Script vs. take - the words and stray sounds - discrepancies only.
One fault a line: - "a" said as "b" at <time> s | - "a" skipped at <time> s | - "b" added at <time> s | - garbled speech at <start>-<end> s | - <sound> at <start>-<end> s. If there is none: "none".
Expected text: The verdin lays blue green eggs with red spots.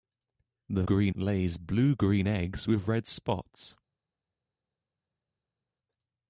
- "verdin" said as "green" at 0.8 s